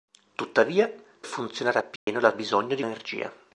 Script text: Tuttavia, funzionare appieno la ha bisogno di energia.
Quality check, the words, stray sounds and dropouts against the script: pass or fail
fail